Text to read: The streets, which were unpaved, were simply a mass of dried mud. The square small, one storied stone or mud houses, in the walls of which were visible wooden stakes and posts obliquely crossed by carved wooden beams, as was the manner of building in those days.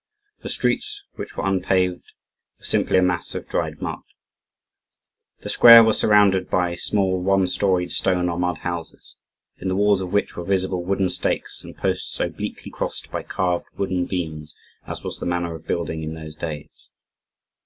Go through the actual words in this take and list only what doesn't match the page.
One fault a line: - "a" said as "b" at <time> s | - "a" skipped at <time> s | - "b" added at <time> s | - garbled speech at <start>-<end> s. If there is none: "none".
- "was surrounded by" added at 5.8 s